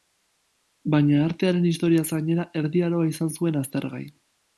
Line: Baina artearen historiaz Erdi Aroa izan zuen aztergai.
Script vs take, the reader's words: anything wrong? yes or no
yes